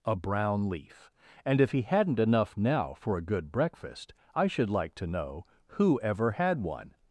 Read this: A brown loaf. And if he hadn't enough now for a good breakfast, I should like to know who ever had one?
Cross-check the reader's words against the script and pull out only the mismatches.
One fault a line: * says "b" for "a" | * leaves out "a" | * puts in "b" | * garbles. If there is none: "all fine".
* says "leaf" for "loaf"